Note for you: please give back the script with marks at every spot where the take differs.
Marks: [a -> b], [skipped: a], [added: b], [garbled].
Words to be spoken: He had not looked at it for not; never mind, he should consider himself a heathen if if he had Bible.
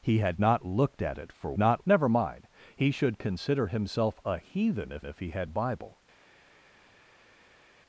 He had not looked at it for not; never mind, he should consider himself a heathen if if he had Bible.